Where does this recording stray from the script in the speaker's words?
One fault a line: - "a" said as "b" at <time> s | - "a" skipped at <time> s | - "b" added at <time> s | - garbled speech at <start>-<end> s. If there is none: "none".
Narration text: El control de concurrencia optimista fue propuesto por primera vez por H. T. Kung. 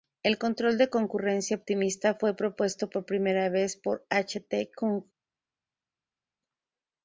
none